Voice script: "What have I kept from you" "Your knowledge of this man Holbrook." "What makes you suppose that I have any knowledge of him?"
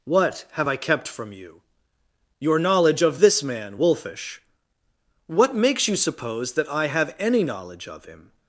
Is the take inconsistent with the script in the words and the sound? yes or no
yes